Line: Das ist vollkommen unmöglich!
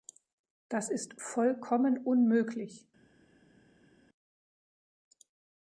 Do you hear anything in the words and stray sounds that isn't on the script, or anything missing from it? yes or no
no